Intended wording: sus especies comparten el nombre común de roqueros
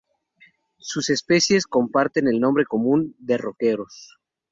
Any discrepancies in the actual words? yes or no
no